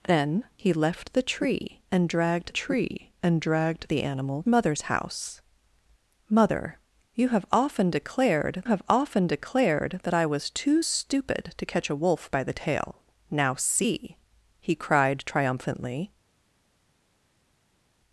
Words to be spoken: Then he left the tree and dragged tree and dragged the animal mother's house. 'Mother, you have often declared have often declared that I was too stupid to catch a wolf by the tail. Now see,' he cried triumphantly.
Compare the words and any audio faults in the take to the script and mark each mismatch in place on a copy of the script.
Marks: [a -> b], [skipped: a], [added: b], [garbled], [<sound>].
Then he left the tree and dragged tree and dragged the animal mother's house. 'Mother, you have often declared have often declared that I was too stupid to catch a wolf by the tail. Now see,' he cried triumphantly.